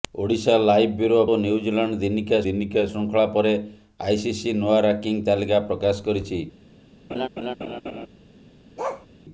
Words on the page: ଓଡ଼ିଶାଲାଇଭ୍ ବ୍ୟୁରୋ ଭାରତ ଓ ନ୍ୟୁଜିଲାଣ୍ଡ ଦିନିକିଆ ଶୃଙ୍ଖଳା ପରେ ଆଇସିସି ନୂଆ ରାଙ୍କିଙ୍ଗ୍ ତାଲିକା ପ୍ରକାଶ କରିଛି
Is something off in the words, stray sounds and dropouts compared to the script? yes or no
yes